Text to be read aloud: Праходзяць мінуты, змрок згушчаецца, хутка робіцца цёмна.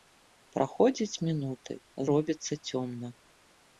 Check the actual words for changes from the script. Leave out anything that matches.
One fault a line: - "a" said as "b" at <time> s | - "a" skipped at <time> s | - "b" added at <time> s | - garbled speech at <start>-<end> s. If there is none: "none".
- "змрок згушчаецца хутка" skipped at 1.7 s